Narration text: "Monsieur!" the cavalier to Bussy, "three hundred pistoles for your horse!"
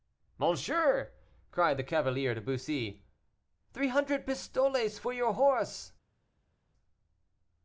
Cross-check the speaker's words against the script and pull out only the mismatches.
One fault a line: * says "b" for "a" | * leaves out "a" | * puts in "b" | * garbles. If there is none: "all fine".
* puts in "cried"